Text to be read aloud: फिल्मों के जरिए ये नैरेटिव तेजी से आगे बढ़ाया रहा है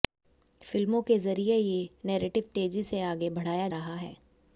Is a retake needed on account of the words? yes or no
no